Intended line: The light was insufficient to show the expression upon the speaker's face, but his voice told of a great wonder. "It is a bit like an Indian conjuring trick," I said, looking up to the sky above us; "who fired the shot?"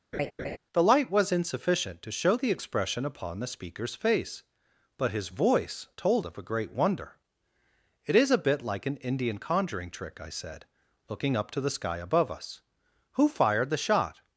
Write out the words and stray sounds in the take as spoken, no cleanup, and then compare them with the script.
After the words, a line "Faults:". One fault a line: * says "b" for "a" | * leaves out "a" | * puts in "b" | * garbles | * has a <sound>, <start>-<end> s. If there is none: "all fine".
The light was insufficient to show the expression upon the speaker's face, but his voice told of a great wonder. "It is a bit like an Indian conjuring trick," I said, looking up to the sky above us; "who fired the shot?"
Faults:
* has a laugh, 0.1-0.6 s